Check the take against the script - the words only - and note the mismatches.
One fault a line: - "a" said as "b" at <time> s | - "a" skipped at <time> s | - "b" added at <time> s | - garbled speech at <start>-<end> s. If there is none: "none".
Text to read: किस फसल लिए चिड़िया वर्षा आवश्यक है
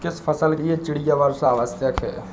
none